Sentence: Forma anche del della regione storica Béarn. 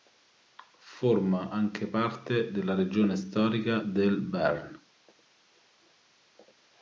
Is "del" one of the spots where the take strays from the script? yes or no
yes